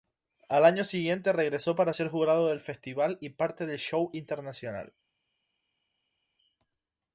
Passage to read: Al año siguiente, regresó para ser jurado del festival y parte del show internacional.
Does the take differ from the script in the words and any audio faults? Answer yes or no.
no